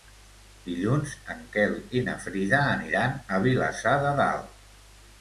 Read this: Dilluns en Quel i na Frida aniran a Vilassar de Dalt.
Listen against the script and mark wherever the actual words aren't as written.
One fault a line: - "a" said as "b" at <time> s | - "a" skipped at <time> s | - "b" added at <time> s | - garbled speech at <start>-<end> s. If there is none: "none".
none